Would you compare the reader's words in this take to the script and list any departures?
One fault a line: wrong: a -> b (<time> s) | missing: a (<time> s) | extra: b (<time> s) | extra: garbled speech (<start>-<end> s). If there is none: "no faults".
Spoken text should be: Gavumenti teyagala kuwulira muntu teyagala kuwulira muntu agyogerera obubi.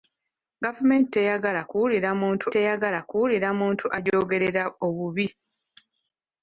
no faults